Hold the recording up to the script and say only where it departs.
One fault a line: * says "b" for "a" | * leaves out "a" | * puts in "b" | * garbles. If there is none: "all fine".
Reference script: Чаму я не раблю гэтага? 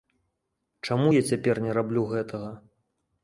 * puts in "цяпер"